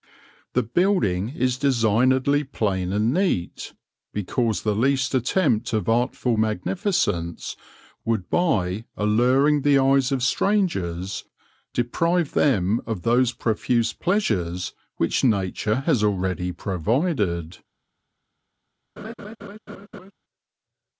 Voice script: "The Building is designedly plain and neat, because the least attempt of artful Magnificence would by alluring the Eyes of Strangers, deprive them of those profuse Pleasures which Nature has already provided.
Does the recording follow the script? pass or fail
pass